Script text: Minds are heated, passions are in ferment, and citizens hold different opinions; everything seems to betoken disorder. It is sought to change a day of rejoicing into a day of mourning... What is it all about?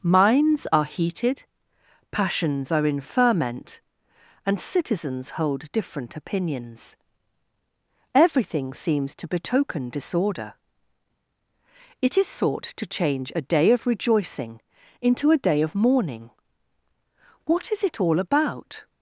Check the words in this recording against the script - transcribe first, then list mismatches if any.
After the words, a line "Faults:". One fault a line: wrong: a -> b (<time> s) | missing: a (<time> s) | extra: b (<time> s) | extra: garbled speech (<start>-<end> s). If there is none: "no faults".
Minds are heated, passions are in ferment, and citizens hold different opinions; everything seems to betoken disorder. It is sought to change a day of rejoicing into a day of mourning... What is it all about?
Faults:
no faults